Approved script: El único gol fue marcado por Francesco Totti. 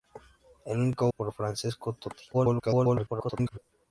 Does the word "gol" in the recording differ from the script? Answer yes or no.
yes